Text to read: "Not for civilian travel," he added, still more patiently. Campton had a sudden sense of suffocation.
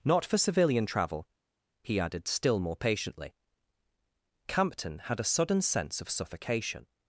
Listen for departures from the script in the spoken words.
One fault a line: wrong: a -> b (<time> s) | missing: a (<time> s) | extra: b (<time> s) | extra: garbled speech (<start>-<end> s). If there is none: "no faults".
no faults